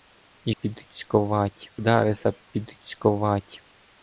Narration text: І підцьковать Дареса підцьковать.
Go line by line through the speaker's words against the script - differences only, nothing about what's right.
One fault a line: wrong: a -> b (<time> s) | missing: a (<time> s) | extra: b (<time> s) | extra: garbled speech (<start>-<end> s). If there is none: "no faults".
no faults